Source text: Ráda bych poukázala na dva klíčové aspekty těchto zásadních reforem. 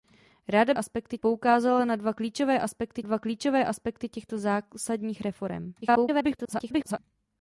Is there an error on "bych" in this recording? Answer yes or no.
yes